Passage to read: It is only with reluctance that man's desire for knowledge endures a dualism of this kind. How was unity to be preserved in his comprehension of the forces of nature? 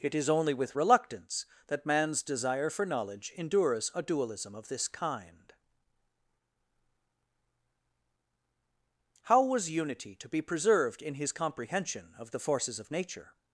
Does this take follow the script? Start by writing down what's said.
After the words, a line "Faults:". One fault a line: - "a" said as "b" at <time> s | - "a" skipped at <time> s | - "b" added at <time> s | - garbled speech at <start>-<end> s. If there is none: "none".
It is only with reluctance that man's desire for knowledge endures a dualism of this kind. How was unity to be preserved in his comprehension of the forces of nature?
Faults:
none